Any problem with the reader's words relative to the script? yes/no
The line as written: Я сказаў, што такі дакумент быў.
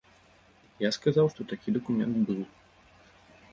no